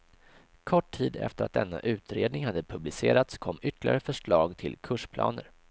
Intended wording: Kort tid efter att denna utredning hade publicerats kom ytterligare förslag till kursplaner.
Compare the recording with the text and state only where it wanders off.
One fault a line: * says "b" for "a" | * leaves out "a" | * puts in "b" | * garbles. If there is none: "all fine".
all fine